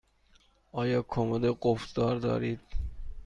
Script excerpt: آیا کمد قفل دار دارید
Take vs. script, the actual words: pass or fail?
pass